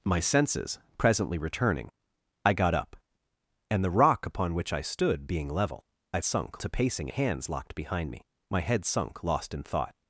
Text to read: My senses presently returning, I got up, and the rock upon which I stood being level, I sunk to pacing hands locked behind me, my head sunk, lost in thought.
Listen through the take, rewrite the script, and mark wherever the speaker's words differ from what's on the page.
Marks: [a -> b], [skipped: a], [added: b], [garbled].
My senses presently returning, I got up, and the rock upon which I stood being level, I sunk to pacing hands locked behind me, my head sunk, lost in thought.